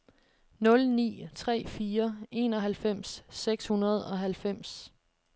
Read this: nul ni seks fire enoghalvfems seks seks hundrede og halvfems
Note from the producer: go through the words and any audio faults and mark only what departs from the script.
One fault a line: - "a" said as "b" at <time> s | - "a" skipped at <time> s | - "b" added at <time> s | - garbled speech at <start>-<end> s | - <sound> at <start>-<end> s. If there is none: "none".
- "seks" said as "tre" at 1.4 s
- "seks" skipped at 3.7 s